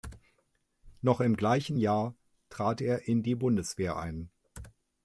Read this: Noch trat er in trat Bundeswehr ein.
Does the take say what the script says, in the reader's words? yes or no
no